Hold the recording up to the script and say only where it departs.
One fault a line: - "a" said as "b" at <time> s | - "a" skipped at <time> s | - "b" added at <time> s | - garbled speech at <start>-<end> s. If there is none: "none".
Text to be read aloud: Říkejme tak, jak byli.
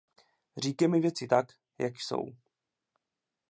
- "věci" added at 1.0 s
- "byli" said as "jsou" at 2.0 s